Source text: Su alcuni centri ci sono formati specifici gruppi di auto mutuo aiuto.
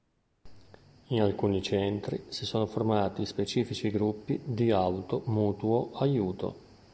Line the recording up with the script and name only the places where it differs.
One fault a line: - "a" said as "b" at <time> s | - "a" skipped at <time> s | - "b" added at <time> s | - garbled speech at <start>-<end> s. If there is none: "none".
- "Su" said as "In" at 1.1 s
- "ci" said as "si" at 2.3 s